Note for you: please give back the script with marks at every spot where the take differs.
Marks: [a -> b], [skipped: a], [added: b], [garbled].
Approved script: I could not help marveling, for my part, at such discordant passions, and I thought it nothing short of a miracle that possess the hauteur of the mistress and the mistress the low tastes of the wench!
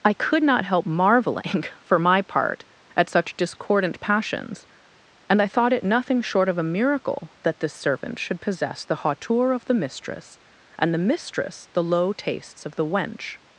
I could not help marveling, for my part, at such discordant passions, and I thought it nothing short of a miracle that [added: this servant should] possess the hauteur of the mistress and the mistress the low tastes of the wench!